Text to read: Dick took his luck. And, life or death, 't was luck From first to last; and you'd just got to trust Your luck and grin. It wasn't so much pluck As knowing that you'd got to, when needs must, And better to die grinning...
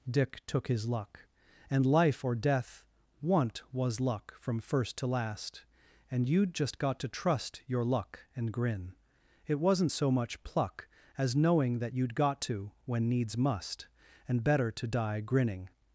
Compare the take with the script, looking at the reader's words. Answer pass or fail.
fail